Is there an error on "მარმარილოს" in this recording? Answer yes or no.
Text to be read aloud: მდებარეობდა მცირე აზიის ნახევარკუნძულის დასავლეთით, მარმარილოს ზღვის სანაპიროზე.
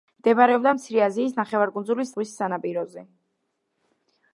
yes